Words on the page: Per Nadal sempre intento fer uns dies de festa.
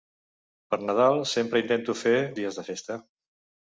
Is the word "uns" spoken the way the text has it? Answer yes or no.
no